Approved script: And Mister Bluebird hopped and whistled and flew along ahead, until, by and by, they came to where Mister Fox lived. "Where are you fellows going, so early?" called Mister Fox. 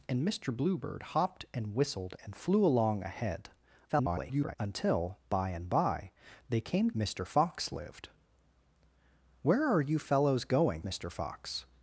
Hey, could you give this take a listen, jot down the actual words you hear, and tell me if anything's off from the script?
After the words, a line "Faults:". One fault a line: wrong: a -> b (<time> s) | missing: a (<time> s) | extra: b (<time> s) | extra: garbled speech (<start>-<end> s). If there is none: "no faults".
And Mister Bluebird hopped and whistled and flew along ahead, [garbled] until, by and by, they came Mister Fox lived. "Where are you fellows going, Mister Fox.
Faults:
extra: garbled speech (3.9-4.6 s)
missing: to where (6.9 s)
missing: so early called (10.8 s)